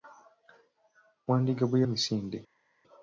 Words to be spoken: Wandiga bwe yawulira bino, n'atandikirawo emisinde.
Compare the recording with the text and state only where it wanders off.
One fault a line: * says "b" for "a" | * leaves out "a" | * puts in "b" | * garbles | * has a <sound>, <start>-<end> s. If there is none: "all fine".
* leaves out "yawulira bino n'atandikirawo"